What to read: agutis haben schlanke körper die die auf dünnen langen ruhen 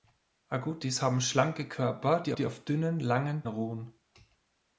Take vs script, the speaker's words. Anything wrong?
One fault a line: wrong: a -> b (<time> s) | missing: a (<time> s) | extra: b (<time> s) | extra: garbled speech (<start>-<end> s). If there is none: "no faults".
no faults